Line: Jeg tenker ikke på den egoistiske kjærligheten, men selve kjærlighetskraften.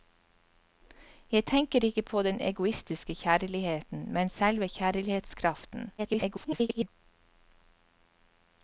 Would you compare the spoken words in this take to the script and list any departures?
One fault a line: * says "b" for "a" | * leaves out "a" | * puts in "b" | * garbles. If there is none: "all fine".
* garbles